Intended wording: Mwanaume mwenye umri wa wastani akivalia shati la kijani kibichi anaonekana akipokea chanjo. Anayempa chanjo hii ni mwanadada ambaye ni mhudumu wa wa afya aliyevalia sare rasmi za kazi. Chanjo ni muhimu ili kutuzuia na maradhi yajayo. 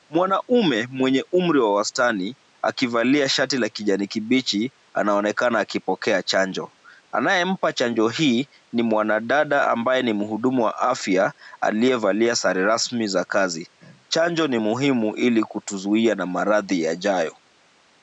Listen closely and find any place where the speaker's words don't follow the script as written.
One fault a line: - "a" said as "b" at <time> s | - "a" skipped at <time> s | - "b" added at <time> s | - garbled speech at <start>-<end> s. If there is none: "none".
- "wa" skipped at 10.8 s